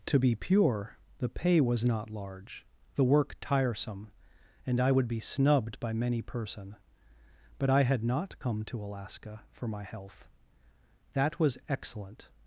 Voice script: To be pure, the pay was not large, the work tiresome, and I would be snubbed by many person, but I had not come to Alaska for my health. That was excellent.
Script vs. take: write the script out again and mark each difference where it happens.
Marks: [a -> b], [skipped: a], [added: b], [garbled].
To be pure, the pay was not large, the work tiresome, and I would be snubbed by many person, but I had not come to Alaska for my health. That was excellent.